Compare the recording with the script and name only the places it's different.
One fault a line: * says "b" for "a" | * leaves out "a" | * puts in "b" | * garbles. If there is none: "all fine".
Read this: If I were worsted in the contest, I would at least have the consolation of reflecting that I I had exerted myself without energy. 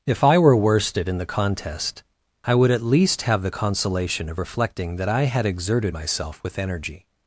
* leaves out "I"
* says "with" for "without"